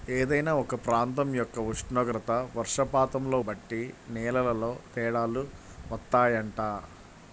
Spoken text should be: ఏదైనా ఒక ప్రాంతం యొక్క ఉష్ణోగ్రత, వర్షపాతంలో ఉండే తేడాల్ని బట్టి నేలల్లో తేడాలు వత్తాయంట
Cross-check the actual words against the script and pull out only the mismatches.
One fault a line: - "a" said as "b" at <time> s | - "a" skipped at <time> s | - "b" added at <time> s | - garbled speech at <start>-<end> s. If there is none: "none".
- "ఉండే తేడాల్ని" skipped at 3.4 s